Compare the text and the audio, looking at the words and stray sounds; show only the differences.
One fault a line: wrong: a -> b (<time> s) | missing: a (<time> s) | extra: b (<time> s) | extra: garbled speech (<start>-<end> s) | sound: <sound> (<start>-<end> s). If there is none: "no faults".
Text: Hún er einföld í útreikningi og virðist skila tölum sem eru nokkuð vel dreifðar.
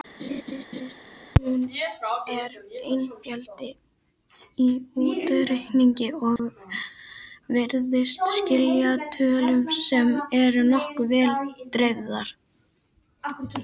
sound: laugh (0.2-0.9 s)
sound: dropout (6.4-6.4 s)